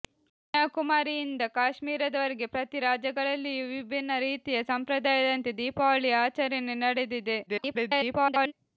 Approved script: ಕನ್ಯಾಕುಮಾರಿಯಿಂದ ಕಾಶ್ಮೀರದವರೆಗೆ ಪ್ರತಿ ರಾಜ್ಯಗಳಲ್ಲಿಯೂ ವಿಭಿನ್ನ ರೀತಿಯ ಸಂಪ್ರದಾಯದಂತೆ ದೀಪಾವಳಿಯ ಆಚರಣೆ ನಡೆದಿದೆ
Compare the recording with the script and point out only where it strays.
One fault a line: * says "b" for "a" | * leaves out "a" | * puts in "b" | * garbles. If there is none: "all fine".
* garbles